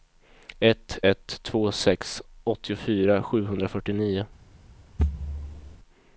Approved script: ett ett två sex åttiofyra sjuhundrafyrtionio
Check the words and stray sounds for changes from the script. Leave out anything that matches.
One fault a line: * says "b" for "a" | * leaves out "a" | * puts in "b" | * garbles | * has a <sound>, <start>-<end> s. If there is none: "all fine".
* has a thud, 5.0-5.8 s